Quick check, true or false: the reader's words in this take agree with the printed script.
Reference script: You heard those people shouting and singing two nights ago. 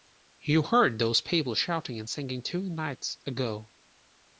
true